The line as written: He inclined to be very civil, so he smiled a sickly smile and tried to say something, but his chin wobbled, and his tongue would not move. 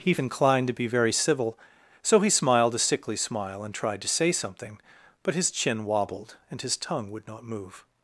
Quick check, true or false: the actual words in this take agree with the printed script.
true